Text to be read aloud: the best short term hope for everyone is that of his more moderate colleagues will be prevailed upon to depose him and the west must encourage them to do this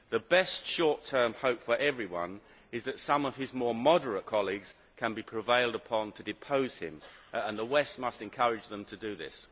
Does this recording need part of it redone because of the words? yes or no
yes